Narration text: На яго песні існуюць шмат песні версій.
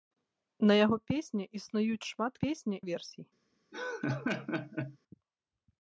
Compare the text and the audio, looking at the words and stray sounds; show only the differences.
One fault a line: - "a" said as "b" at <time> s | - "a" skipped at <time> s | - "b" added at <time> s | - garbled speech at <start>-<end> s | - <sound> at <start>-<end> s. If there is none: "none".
- laugh at 3.7-5.0 s